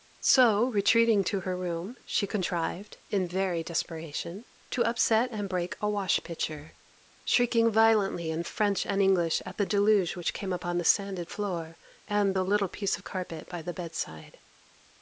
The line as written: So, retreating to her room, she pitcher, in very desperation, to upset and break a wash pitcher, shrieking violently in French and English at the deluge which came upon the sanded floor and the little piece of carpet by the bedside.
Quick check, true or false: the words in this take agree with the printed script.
false